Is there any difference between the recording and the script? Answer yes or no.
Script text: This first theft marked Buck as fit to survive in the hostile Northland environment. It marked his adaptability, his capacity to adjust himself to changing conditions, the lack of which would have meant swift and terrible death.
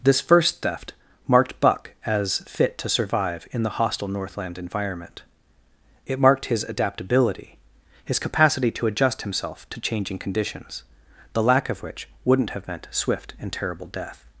yes